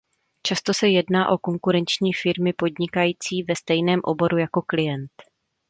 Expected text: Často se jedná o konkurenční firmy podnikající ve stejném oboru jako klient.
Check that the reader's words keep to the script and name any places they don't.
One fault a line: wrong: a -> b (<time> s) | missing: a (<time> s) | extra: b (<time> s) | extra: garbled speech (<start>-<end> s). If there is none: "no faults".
no faults